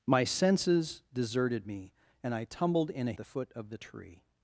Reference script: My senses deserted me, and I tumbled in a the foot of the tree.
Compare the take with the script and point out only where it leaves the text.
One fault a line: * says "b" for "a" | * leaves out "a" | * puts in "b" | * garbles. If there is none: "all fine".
all fine